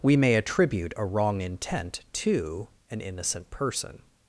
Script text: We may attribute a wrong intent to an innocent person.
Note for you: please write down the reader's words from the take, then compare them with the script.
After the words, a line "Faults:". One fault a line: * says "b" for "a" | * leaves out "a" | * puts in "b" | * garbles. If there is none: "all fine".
We may attribute a wrong intent to an innocent person.
Faults:
all fine